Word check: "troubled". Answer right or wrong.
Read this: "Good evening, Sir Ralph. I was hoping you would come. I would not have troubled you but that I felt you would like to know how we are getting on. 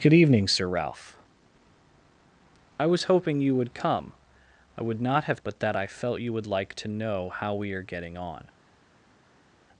wrong